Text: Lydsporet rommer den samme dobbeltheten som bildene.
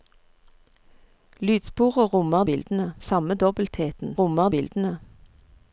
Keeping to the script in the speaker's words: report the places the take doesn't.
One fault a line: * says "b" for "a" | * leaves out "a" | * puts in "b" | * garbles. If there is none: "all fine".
* says "bildene" for "den"
* says "rommer" for "som"